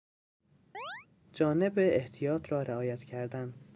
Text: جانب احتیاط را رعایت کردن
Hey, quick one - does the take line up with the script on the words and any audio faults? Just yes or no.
no